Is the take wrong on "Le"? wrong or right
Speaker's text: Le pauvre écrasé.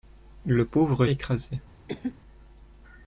right